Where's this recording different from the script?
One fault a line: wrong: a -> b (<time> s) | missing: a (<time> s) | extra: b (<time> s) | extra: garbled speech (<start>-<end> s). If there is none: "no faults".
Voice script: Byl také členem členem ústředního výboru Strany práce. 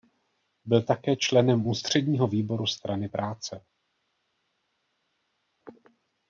missing: členem (1.7 s)